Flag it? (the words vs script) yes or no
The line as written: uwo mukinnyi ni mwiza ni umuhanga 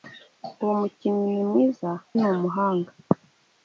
no